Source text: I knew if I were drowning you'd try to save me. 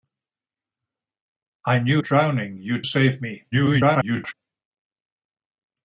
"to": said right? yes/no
no